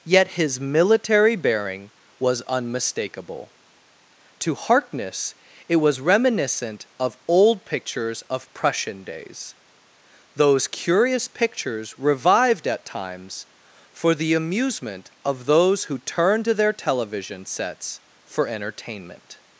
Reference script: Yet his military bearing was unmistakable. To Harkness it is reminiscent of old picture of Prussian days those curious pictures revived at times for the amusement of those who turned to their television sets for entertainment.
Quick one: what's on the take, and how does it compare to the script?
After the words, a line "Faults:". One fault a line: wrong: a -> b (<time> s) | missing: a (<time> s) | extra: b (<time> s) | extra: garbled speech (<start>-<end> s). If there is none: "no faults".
Yet his military bearing was unmistakable. To Harkness it was reminiscent of old pictures of Prussian days those curious pictures revived at times for the amusement of those who turned to their television sets for entertainment.
Faults:
wrong: is -> was (5.8 s)
wrong: picture -> pictures (7.6 s)